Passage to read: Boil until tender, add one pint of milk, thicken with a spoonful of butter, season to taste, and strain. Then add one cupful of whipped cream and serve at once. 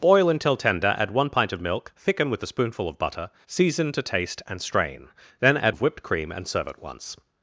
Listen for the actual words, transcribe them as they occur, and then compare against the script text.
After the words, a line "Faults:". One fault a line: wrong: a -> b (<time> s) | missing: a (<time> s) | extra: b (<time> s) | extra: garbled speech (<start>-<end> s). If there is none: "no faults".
Boil until tender, add one pint of milk, thicken with a spoonful of butter, season to taste, and strain. Then add of whipped cream and serve at once.
Faults:
missing: one cupful (5.8 s)